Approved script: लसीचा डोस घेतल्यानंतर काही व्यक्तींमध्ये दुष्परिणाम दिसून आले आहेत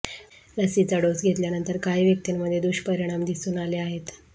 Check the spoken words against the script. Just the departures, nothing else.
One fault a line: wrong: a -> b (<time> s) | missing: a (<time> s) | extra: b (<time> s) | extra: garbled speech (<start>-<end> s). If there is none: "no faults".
no faults